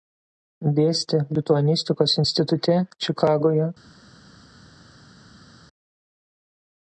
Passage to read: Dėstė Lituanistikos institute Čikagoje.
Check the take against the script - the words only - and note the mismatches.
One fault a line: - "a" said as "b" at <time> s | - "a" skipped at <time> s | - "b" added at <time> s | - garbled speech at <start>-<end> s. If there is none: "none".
none